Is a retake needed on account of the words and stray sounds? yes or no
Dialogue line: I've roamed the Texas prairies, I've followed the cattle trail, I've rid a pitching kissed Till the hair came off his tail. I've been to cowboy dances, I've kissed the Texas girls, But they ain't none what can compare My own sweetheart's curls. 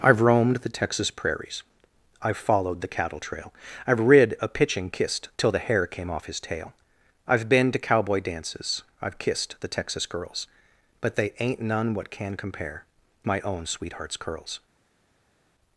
no